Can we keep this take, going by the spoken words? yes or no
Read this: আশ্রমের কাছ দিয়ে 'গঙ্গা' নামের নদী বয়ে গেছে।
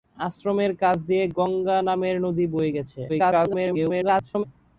no